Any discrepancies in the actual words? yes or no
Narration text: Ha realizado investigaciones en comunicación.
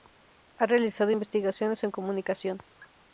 no